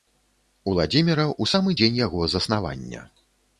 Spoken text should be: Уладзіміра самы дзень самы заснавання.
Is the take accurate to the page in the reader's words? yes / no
no